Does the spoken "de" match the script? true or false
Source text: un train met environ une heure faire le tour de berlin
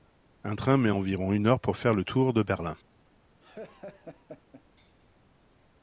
true